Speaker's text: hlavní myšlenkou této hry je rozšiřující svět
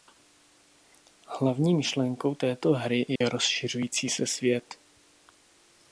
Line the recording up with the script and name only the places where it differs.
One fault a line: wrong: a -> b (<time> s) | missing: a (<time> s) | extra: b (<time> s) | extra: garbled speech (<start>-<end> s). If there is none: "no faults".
extra: se (4.1 s)